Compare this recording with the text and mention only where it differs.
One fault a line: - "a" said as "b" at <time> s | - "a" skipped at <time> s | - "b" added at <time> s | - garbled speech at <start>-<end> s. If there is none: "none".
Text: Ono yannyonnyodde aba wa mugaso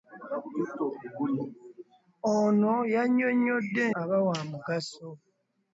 none